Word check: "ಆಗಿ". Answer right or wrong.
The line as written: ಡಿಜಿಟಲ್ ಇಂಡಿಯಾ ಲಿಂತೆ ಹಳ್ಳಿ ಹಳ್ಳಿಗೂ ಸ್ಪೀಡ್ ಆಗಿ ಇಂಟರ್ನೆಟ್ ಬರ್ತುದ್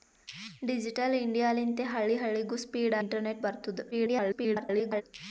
wrong